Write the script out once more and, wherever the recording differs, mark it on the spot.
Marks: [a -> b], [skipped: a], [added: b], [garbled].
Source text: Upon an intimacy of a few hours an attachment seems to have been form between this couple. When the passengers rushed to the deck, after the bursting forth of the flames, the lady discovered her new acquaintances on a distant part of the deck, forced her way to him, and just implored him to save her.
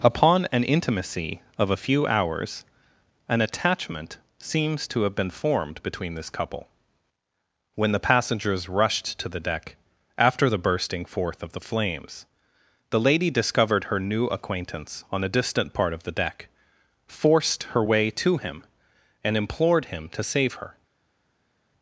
Upon an intimacy of a few hours an attachment seems to have been [form -> formed] between this couple. When the passengers rushed to the deck, after the bursting forth of the flames, the lady discovered her new [acquaintances -> acquaintance] on a distant part of the deck, forced her way to him, and [skipped: just] implored him to save her.